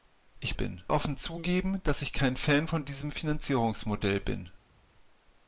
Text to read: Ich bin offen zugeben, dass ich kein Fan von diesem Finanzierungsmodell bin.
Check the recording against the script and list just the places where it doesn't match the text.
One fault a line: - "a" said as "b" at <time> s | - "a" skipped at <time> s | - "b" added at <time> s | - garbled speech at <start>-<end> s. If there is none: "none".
none